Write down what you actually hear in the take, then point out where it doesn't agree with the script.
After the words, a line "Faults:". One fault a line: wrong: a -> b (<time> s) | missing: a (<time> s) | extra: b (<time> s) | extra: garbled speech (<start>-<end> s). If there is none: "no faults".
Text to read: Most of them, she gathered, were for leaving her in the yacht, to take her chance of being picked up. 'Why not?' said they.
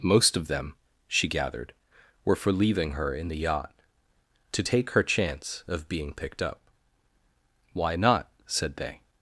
Most of them, she gathered, were for leaving her in the yacht, to take her chance of being picked up. 'Why not?' said they.
Faults:
no faults